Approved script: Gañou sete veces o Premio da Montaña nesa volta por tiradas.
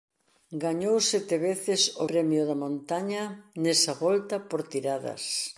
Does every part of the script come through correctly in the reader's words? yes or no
yes